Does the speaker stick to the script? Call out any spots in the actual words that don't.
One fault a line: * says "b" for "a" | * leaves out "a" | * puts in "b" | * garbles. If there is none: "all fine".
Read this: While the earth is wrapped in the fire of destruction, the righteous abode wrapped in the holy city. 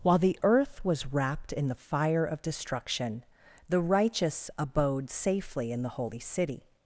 * says "was" for "is"
* says "safely" for "wrapped"